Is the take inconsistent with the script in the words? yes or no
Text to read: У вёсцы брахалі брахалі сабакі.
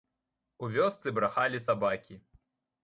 yes